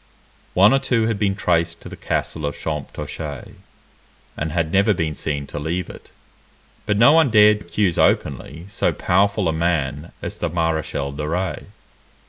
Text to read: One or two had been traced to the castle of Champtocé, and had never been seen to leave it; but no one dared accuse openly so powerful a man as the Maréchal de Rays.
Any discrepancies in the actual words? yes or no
no